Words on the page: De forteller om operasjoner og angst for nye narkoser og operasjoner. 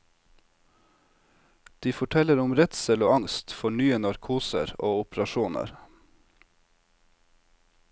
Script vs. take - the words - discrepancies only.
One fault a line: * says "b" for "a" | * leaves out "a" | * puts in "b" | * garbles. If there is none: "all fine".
* says "redsel" for "operasjoner"